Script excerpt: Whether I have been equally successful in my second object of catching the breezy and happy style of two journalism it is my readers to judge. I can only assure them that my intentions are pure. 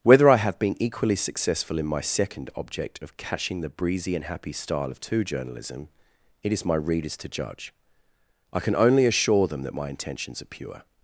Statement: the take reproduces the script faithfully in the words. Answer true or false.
true